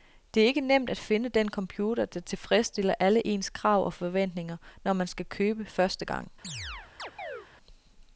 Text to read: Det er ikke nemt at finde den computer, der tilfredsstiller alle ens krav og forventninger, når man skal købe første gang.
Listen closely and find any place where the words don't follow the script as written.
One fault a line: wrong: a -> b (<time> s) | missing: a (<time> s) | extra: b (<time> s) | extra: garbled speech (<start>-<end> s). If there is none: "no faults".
no faults